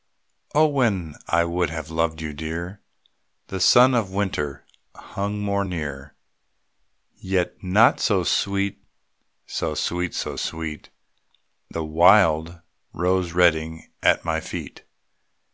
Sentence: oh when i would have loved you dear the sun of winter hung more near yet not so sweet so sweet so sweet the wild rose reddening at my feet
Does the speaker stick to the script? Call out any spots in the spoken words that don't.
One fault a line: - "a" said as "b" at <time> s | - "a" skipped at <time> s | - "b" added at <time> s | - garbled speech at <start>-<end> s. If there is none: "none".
none